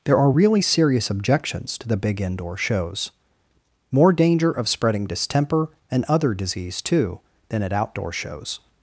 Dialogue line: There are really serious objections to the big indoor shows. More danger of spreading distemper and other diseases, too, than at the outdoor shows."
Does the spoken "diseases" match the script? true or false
false